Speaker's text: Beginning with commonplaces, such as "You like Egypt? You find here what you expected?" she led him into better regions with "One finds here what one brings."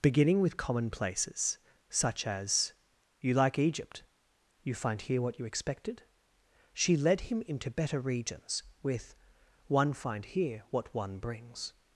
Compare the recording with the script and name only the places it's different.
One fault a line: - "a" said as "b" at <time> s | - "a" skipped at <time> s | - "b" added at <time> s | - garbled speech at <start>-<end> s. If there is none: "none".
- "finds" said as "find" at 9.9 s